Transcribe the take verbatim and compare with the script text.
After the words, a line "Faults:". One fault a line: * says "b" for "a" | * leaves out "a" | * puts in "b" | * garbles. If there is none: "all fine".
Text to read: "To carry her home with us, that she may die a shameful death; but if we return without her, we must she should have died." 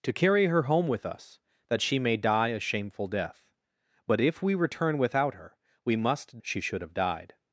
"To carry her home with us, that she may die a shameful death; but if we return without her, we must she should have died."
Faults:
all fine